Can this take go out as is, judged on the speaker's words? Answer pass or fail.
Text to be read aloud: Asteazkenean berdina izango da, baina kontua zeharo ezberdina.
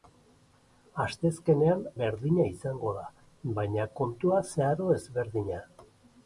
pass